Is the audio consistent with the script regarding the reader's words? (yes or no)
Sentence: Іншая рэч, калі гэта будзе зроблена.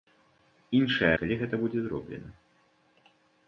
no